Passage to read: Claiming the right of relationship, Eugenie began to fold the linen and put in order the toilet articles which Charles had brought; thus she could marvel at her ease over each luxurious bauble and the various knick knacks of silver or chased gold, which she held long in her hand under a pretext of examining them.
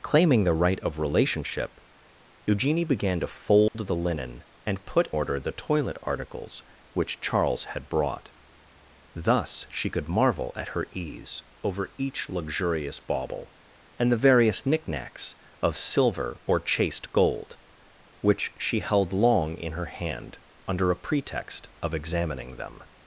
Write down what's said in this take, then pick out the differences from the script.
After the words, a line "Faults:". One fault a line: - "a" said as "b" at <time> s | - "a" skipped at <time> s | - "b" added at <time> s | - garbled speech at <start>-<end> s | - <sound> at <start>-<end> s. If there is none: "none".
Claiming the right of relationship, Eugenie began to fold the linen and put order the toilet articles which Charles had brought; thus she could marvel at her ease over each luxurious bauble and the various knick knacks of silver or chased gold, which she held long in her hand under a pretext of examining them.
Faults:
- dropout at 3.7-3.7 s
- "in" skipped at 5.1 s